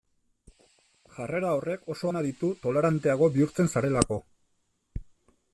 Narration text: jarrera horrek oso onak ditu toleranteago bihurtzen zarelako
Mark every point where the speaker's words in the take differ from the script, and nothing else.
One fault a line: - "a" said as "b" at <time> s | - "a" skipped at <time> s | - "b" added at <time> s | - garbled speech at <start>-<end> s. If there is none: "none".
none